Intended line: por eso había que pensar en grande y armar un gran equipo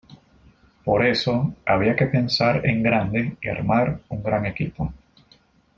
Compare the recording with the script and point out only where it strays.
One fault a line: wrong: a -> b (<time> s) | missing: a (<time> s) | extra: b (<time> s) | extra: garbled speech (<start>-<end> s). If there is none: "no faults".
no faults